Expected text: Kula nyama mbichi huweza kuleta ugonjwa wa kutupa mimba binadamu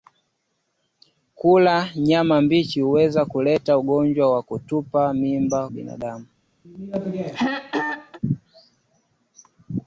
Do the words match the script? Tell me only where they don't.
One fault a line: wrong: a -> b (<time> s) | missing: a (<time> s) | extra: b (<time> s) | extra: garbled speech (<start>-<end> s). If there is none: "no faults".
no faults